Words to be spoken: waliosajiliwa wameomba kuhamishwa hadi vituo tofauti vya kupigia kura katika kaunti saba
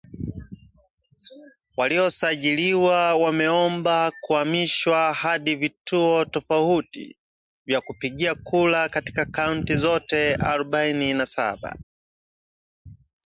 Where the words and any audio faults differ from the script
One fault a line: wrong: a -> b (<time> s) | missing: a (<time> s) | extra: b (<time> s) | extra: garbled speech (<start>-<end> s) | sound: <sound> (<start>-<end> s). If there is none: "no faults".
extra: zote arobaini na (9.8 s)